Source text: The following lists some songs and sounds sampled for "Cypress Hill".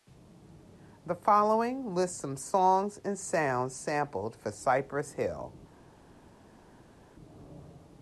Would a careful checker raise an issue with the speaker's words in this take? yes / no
no